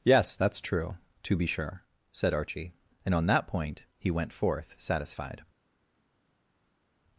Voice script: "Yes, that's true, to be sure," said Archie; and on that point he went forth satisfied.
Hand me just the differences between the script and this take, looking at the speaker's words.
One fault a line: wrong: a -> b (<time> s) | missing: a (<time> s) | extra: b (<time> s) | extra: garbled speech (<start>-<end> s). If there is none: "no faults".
no faults